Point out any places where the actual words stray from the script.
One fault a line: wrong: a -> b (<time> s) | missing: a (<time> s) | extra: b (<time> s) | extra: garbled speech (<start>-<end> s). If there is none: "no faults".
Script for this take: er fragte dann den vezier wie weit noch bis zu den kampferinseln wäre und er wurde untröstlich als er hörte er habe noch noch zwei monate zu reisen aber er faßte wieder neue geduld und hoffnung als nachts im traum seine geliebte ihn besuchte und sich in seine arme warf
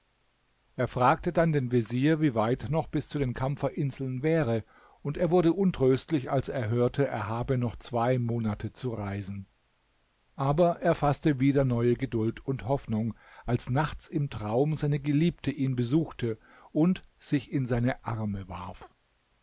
missing: noch (7.8 s)